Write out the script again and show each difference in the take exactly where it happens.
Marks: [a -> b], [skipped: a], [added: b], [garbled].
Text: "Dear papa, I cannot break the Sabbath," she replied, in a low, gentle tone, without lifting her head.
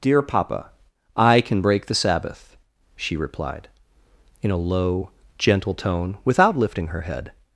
"Dear papa, I [cannot -> can] break the Sabbath," she replied, in a low, gentle tone, without lifting her head.